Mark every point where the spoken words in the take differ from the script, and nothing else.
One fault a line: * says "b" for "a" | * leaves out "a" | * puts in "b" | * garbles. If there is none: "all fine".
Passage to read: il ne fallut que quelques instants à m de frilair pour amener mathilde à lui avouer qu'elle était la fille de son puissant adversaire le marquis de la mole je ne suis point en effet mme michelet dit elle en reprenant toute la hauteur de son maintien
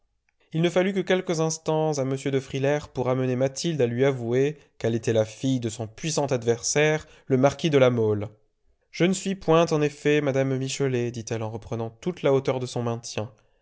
all fine